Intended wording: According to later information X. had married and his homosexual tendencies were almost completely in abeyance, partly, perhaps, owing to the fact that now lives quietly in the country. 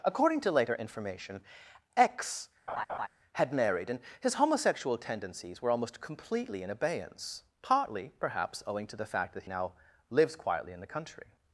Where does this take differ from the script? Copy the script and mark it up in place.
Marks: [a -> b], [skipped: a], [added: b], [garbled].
According to later information X. had married and his homosexual tendencies were almost completely in abeyance, partly, perhaps, owing to the fact that now lives quietly in the country.